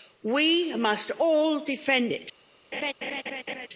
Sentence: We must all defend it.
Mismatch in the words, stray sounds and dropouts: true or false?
true